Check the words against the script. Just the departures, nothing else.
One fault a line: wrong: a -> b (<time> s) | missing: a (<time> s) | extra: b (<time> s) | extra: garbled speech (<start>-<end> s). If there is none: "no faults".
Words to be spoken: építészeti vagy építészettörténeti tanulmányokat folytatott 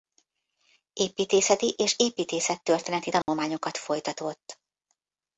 wrong: vagy -> és (1.8 s)